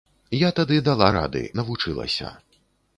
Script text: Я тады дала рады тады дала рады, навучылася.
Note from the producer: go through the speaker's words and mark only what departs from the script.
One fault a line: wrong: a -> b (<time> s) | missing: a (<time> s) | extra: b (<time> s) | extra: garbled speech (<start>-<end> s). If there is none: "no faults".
missing: тады дала рады (1.4 s)